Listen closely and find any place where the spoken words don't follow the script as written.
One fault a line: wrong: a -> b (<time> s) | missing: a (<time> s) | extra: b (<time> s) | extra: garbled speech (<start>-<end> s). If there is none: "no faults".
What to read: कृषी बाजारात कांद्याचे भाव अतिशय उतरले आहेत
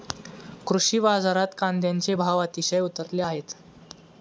no faults